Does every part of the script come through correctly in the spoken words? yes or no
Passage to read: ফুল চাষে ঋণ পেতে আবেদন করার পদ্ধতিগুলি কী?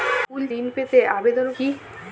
no